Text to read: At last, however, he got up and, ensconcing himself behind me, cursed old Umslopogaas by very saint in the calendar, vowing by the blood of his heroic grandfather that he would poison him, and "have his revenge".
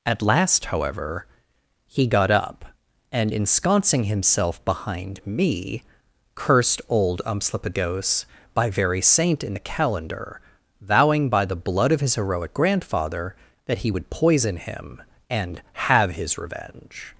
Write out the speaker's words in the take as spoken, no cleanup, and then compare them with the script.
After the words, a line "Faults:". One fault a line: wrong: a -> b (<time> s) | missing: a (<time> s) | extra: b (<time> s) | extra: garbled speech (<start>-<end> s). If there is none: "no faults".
At last, however, he got up and, ensconcing himself behind me, cursed old Umslopogaas by very saint in the calendar, vowing by the blood of his heroic grandfather that he would poison him, and "have his revenge".
Faults:
no faults